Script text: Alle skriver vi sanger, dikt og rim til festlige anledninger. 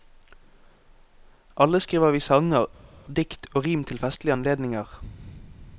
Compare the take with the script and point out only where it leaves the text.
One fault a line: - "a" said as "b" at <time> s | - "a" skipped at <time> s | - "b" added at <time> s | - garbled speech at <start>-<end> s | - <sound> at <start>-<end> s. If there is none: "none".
none